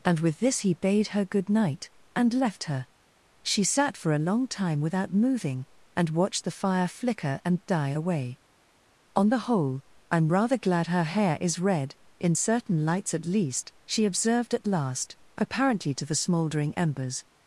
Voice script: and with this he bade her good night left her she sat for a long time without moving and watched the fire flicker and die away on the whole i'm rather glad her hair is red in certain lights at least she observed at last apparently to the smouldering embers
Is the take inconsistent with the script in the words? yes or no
yes